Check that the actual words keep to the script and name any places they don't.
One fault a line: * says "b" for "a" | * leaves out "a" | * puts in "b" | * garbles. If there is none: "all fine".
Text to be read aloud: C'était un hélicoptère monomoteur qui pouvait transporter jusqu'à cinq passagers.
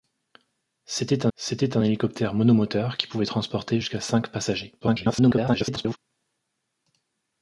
* puts in "c'était"
* garbles